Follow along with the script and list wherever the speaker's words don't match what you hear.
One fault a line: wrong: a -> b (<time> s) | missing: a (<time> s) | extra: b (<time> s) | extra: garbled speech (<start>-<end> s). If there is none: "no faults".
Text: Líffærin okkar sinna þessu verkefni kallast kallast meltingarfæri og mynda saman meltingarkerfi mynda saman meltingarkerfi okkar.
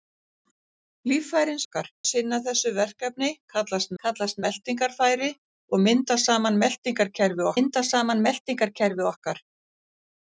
no faults